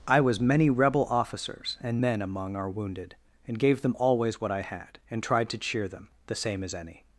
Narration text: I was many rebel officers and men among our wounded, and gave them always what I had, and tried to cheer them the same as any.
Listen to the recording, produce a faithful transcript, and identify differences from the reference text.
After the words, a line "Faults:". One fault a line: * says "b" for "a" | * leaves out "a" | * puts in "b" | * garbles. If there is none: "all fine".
I was many rebel officers and men among our wounded, and gave them always what I had, and tried to cheer them the same as any.
Faults:
all fine